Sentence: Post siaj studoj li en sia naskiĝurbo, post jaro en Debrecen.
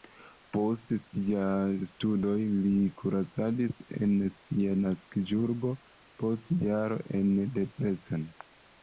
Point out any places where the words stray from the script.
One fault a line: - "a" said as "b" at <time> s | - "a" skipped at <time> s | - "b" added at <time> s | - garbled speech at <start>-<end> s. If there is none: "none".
- "kuracadis" added at 3.0 s